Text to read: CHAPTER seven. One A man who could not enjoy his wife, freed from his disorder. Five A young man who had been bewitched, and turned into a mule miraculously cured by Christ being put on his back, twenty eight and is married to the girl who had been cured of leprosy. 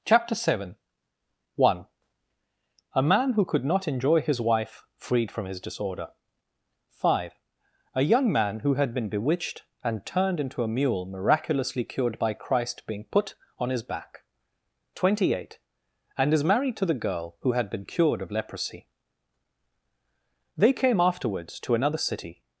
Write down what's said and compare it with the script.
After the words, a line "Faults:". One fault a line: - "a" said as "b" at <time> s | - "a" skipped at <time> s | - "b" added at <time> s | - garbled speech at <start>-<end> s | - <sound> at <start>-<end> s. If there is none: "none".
CHAPTER seven. One A man who could not enjoy his wife, freed from his disorder. Five A young man who had been bewitched, and turned into a mule miraculously cured by Christ being put on his back, twenty eight and is married to the girl who had been cured of leprosy. THEY came afterwards to another city
Faults:
- "THEY came afterwards to another city" added at 20.6 s